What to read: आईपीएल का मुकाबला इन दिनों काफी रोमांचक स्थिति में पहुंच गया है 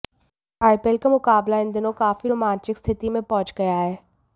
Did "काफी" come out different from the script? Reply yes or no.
no